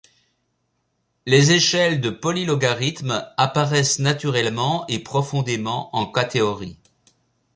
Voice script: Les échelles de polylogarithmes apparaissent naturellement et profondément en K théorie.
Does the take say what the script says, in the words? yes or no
yes